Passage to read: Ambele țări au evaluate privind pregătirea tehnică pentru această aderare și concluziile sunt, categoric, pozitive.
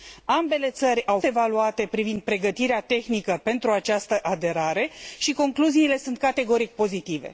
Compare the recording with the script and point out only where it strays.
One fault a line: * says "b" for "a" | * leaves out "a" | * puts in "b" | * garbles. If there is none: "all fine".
all fine